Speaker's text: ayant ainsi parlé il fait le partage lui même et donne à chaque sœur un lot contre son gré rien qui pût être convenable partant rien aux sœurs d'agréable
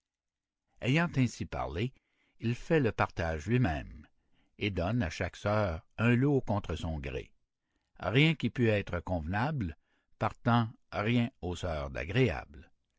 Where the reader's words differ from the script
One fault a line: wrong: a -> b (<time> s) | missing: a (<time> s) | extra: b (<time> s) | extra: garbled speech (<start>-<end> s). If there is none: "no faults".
no faults